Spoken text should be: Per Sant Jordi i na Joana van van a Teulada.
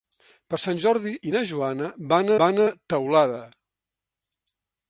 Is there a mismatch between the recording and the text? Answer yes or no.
no